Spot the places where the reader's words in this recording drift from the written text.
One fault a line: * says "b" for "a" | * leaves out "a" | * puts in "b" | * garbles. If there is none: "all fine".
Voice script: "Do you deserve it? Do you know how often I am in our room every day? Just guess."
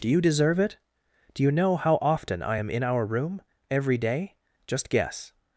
all fine